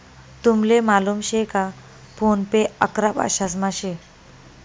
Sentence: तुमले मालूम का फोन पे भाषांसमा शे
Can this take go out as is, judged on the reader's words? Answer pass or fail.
fail